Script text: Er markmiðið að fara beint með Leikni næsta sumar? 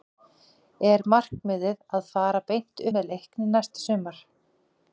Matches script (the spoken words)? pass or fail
pass